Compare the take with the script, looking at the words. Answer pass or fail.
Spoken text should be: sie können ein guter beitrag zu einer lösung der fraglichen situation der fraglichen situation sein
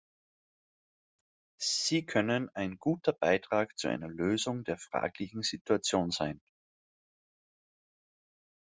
fail